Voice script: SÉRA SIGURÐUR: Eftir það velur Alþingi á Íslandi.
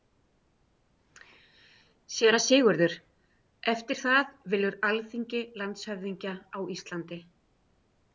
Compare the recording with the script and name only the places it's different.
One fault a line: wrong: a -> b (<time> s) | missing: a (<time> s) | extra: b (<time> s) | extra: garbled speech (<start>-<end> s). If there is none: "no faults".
extra: landshöfðingja (5.6 s)